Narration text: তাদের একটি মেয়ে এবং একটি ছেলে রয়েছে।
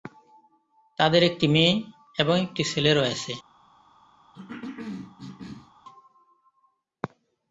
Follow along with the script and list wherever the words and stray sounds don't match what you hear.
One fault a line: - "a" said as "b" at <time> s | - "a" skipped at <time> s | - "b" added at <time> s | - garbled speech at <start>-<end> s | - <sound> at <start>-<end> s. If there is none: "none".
- cough at 4.3-5.7 s